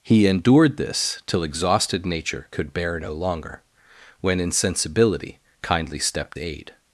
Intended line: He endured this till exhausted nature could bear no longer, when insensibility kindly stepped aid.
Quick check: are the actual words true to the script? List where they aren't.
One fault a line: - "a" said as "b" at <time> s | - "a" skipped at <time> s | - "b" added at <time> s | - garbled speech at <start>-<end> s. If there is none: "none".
none